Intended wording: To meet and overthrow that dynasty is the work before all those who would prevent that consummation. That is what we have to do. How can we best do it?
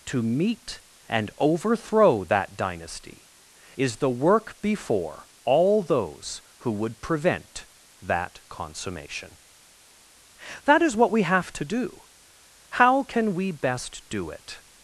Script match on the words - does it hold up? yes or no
yes